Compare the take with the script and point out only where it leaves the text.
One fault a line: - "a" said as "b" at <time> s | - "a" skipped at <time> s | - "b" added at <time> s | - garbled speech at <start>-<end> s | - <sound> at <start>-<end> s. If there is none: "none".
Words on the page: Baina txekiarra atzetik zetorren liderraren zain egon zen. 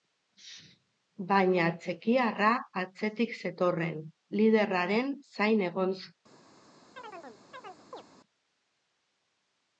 - chirp at 7.0-8.0 s